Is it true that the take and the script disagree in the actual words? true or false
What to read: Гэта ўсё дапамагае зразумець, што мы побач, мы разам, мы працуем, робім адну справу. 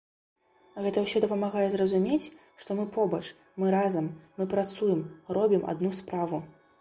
false